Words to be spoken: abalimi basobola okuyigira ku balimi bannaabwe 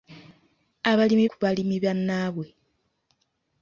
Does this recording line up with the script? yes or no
no